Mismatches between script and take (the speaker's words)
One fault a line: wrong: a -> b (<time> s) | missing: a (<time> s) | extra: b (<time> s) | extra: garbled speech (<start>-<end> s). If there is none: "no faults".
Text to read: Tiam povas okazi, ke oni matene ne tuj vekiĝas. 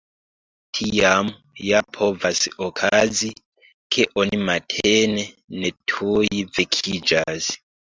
extra: ja (1.6 s)